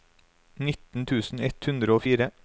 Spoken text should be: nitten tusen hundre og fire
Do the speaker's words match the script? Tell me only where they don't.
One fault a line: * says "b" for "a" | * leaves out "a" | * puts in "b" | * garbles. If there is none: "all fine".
* puts in "ett"